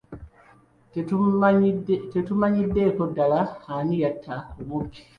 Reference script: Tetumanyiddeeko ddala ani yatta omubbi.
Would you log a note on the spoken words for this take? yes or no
no